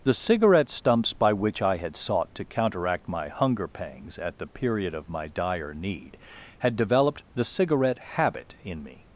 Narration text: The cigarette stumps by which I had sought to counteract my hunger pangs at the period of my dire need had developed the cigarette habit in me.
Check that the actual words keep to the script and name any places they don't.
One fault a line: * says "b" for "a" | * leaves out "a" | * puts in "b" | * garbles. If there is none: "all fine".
all fine